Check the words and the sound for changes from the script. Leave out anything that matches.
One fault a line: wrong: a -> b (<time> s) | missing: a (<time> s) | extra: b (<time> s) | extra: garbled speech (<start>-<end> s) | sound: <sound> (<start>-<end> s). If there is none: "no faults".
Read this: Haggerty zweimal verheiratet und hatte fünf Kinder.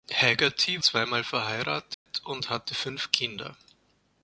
sound: dropout (1.9-2.1 s)